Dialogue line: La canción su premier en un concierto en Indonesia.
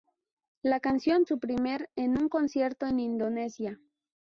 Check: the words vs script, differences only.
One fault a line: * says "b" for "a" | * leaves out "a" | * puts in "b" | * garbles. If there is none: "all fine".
all fine